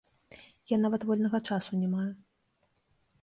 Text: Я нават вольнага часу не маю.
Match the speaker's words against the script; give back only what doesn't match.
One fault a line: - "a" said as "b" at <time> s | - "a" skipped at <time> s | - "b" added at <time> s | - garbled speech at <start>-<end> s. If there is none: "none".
none